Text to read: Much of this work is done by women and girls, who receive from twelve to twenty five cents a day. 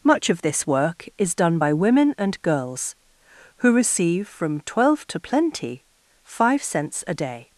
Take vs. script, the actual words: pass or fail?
fail